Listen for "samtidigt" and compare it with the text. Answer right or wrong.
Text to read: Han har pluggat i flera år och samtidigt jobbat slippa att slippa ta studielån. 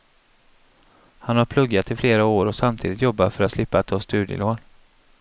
right